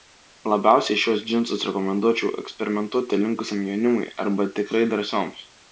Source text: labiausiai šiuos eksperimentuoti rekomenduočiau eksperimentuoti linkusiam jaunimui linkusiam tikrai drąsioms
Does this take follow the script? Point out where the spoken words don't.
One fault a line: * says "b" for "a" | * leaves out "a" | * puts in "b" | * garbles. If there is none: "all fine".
* says "džinsus" for "eksperimentuoti"
* says "arba" for "linkusiam"